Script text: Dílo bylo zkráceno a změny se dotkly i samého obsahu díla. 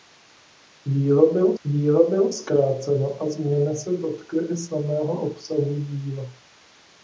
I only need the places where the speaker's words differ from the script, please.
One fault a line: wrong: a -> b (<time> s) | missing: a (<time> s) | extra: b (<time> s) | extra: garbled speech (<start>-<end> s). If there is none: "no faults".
extra: dílo bylo (1.6 s)